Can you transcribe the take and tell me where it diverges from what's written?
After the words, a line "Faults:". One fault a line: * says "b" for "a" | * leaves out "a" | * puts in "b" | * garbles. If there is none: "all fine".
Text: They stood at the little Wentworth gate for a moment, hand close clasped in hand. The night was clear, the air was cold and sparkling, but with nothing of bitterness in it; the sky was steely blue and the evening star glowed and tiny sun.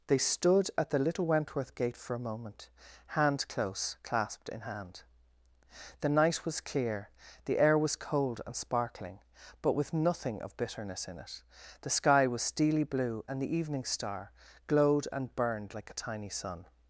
They stood at the little Wentworth gate for a moment, hand close clasped in hand. The night was clear, the air was cold and sparkling, but with nothing of bitterness in it; the sky was steely blue and the evening star glowed and burned like a tiny sun.
Faults:
* puts in "burned like a"